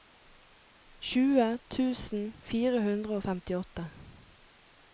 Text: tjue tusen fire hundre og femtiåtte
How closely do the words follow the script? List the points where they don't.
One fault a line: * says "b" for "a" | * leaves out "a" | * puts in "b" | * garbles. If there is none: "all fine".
all fine